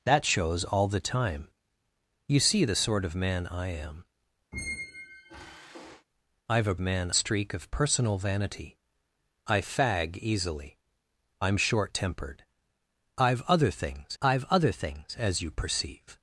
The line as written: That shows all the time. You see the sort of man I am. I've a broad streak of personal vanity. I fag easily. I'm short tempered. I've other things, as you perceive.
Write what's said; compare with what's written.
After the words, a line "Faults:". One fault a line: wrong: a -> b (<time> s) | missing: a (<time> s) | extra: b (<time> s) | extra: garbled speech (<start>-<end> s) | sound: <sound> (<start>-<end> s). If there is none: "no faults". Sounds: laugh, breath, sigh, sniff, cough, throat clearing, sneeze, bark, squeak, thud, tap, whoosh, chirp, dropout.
That shows all the time. You see the sort of man I am. I've a man streak of personal vanity. I fag easily. I'm short tempered. I've other things I've other things, as you perceive.
Faults:
sound: squeak (4.5-6.1 s)
wrong: broad -> man (6.8 s)
extra: I've other things (14.2 s)